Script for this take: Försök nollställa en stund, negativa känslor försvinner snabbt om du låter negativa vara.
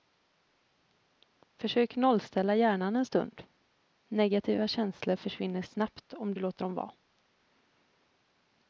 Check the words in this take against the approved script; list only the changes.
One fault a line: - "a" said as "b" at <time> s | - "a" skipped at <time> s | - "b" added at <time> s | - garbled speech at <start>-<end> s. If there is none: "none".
- "hjärnan" added at 2.5 s
- "negativa" said as "dem" at 6.6 s